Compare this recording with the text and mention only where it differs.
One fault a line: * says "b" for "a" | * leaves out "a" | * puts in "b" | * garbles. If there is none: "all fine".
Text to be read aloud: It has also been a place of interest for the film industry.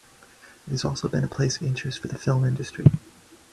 all fine